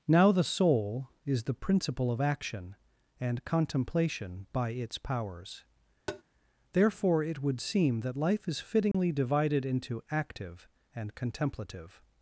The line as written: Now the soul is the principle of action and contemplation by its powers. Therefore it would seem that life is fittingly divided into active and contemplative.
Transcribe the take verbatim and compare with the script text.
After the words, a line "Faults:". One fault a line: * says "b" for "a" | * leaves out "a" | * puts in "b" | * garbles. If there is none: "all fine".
Now the soul is the principle of action and contemplation by its powers. Therefore it would seem that life is fittingly divided into active and contemplative.
Faults:
all fine